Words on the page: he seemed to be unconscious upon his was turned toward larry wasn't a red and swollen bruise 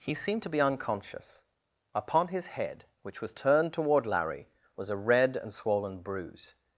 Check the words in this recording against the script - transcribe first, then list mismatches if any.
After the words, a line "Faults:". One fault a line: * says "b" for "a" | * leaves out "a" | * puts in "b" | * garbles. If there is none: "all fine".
he seemed to be unconscious upon his head which was turned toward larry was a red and swollen bruise
Faults:
* puts in "head which"
* says "was" for "wasn't"